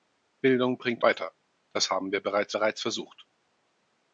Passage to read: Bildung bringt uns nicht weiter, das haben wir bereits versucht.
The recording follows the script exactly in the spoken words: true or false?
false